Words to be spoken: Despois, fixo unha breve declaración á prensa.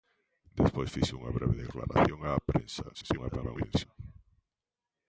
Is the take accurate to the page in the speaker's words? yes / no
no